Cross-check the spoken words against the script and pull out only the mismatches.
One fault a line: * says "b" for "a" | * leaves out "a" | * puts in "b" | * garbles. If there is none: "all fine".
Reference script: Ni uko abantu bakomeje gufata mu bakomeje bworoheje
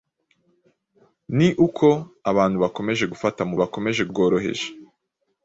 all fine